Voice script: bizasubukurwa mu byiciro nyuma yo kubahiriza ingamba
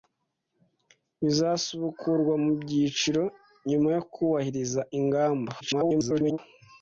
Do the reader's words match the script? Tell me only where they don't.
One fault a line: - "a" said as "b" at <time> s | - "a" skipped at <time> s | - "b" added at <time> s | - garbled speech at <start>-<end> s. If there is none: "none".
- garbled speech at 5.6-6.4 s